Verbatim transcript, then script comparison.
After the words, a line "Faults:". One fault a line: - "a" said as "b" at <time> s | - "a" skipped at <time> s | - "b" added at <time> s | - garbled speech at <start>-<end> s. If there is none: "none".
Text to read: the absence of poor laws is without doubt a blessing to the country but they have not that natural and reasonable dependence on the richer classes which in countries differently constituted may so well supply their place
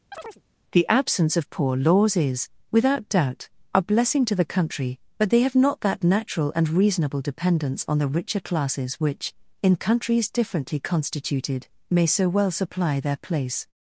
the absence of poor laws is without doubt a blessing to the country but they have not that natural and reasonable dependence on the richer classes which in countries differently constituted may so well supply their place
Faults:
none